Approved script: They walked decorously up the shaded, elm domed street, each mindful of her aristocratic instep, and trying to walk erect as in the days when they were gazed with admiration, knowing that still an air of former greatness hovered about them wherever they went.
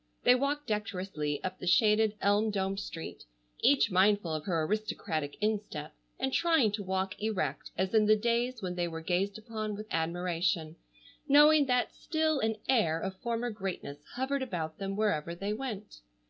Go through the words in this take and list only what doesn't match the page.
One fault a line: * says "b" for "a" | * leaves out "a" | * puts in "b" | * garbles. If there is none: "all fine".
* puts in "upon"